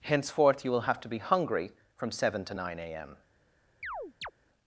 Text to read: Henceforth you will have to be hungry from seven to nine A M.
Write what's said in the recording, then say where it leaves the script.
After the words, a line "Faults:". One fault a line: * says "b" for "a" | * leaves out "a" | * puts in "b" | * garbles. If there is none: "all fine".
Henceforth you will have to be hungry from seven to nine A M.
Faults:
all fine